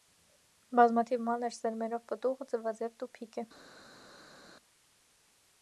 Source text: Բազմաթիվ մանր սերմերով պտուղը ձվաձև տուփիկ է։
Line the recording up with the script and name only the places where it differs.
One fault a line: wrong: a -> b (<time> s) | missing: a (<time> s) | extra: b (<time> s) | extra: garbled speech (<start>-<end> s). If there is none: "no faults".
no faults